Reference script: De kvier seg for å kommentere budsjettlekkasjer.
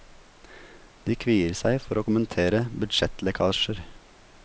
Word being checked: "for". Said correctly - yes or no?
yes